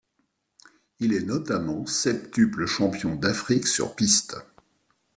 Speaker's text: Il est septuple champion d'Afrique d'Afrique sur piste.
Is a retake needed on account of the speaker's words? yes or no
yes